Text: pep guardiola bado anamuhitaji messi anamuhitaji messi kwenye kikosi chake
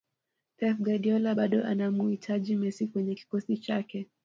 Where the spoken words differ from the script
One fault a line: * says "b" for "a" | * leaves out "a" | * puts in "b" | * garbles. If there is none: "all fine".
* leaves out "anamuhitaji messi"